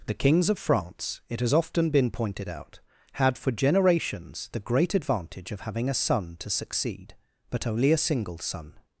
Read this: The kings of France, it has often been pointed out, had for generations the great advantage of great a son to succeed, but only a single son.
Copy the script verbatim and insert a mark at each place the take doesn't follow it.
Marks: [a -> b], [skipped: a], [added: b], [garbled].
The kings of France, it has often been pointed out, had for generations the great advantage of [great -> having] a son to succeed, but only a single son.